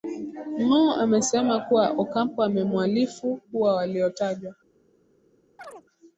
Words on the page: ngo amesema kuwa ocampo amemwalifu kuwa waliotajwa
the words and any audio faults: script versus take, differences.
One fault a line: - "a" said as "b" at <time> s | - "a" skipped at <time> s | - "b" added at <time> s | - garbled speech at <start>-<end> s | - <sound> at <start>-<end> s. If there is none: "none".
- chirp at 5.6-5.8 s